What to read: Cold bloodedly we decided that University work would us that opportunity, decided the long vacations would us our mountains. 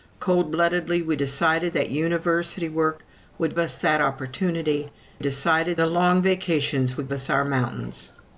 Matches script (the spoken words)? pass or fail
pass